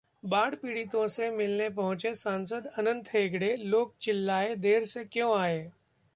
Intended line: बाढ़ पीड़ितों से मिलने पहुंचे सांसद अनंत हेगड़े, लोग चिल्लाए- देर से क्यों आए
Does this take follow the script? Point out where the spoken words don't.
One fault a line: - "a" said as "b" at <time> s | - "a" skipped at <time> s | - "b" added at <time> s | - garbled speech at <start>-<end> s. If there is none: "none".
none